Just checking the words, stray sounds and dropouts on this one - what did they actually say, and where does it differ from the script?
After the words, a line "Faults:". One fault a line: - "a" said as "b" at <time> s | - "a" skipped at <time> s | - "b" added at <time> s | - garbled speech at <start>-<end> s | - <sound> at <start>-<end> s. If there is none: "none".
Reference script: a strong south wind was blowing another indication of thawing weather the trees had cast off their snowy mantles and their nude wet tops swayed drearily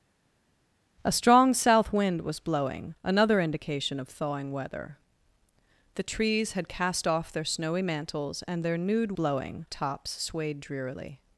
a strong south wind was blowing another indication of thawing weather the trees had cast off their snowy mantles and their nude blowing tops swayed drearily
Faults:
- "wet" said as "blowing" at 9.1 s